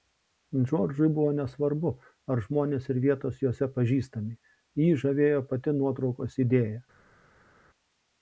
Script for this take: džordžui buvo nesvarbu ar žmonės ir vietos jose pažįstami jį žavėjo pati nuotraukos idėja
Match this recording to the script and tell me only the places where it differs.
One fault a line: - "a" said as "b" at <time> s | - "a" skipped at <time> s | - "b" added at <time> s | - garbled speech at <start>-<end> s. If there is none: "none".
none